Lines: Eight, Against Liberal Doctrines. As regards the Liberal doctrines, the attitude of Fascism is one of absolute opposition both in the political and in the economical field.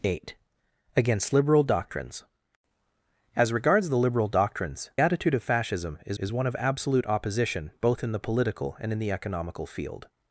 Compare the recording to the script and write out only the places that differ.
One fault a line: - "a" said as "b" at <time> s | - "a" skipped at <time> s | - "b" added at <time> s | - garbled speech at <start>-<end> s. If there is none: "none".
- "the" skipped at 4.9 s
- "is" added at 6.2 s